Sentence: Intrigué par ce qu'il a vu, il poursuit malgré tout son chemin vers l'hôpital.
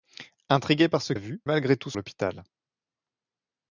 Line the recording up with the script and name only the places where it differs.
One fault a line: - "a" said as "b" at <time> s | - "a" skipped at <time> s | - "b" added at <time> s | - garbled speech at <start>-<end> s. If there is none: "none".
- "qu'il" skipped at 1.1 s
- "il poursuit" skipped at 1.4 s
- "son chemin vers" skipped at 1.9 s